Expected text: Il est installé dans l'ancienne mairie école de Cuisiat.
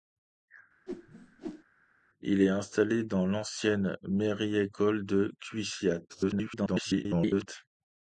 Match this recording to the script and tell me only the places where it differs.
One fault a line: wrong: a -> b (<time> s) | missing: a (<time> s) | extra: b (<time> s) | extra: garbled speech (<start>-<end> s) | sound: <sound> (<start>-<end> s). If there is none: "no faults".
sound: whoosh (0.9-1.6 s)
extra: garbled speech (6.1-7.5 s)